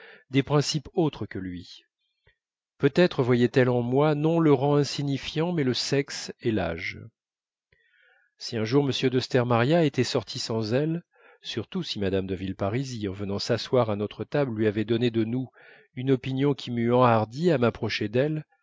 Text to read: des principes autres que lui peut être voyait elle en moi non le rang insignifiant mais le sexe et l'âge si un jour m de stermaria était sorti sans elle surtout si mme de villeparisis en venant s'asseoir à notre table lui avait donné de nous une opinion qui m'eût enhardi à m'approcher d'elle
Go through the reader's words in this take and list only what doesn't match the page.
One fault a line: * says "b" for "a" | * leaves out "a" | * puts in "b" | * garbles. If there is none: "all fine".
all fine